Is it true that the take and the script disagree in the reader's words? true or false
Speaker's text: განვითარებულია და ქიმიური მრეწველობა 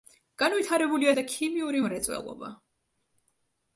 false